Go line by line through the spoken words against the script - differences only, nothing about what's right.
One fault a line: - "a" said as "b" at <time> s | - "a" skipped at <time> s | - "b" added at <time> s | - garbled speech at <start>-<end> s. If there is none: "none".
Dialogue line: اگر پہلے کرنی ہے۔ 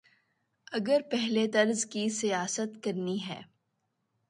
- "طرز کی سیاست" added at 1.5 s